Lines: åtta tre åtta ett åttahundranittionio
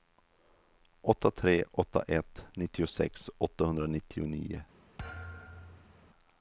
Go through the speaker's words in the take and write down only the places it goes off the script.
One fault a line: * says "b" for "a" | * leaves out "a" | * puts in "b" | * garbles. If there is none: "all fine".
* puts in "nittiosex"